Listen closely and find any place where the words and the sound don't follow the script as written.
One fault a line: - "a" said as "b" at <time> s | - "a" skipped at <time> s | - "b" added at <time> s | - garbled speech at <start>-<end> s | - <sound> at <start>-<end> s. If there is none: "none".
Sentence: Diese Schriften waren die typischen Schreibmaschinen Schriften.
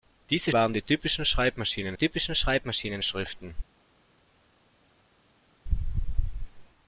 - "Schriften" skipped at 0.5 s
- "typischen Schreibmaschinen" added at 1.9 s